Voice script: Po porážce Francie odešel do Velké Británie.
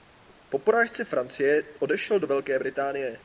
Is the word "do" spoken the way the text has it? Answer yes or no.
yes